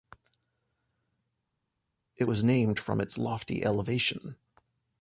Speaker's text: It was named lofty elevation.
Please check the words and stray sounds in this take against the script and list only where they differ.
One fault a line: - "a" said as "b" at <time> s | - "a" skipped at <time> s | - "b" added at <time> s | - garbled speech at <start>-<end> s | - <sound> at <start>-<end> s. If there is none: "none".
- "from its" added at 2.8 s